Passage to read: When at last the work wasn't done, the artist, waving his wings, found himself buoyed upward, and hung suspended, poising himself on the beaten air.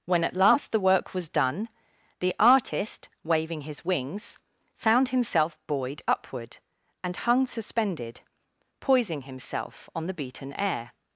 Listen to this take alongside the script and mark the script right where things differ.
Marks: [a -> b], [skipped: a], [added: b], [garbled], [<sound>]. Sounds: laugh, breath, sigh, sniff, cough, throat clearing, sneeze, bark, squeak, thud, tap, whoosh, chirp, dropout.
When at last the work [wasn't -> was] done, the artist, waving his wings, found himself buoyed upward, and hung suspended, poising himself on the beaten air.